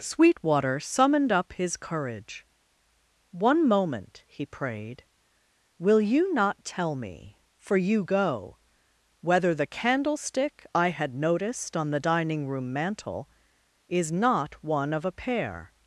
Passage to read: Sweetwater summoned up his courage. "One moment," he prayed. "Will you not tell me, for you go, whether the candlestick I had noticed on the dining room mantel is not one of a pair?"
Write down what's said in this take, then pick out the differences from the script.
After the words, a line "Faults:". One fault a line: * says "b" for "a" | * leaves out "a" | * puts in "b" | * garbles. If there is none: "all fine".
Sweetwater summoned up his courage. "One moment," he prayed. "Will you not tell me, for you go, whether the candlestick I had noticed on the dining room mantel is not one of a pair?"
Faults:
all fine